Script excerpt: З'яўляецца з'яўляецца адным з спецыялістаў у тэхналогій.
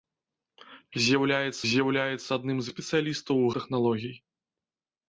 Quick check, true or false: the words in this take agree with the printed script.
true